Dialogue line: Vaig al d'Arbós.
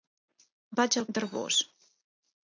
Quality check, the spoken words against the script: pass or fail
pass